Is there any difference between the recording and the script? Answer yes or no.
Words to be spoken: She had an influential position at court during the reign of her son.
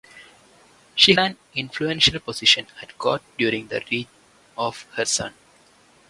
yes